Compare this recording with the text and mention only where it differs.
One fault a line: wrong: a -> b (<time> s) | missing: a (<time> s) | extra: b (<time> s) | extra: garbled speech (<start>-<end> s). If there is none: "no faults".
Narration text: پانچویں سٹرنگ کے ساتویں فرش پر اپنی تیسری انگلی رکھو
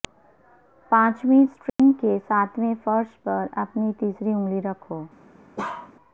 no faults